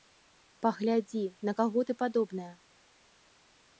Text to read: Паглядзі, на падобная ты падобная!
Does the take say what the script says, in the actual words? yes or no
no